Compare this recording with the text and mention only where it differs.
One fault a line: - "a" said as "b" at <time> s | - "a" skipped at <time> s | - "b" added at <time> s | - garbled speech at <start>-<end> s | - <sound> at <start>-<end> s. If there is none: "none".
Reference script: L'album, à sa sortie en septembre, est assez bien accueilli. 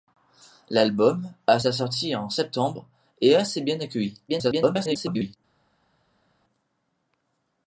- garbled speech at 4.3-5.4 s